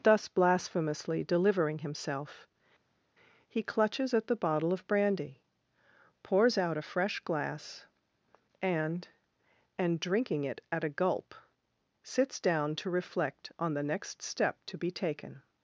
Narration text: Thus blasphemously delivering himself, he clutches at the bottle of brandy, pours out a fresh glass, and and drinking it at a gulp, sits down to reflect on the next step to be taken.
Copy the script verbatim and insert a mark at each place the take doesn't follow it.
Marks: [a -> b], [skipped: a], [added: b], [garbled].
Thus blasphemously delivering himself, he clutches at the bottle of brandy, pours out a fresh glass, and and drinking it at a gulp, sits down to reflect on the next step to be taken.